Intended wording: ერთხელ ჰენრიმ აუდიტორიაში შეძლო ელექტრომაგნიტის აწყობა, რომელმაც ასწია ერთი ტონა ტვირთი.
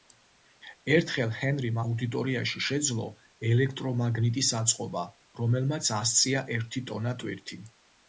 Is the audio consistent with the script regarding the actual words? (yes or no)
yes